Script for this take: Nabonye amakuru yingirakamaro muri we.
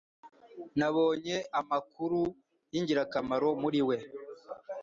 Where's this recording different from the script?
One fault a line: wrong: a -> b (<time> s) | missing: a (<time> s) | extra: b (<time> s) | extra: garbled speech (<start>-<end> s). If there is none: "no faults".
no faults